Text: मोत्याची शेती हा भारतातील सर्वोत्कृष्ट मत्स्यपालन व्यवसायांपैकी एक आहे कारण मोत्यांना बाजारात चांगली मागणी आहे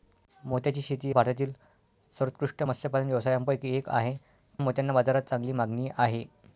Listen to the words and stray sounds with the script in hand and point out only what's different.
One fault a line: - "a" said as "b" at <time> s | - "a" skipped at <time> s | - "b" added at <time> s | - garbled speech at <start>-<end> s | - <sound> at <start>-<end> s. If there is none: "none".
- "हा" skipped at 1.1 s
- "कारण" skipped at 4.2 s